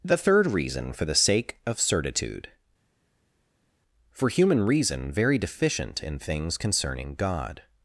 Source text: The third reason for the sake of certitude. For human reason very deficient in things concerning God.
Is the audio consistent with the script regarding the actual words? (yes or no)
yes